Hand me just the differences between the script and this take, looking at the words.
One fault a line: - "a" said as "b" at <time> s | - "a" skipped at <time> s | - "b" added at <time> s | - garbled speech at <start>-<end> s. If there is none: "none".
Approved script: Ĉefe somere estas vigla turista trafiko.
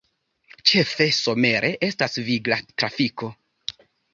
- "turista" skipped at 2.6 s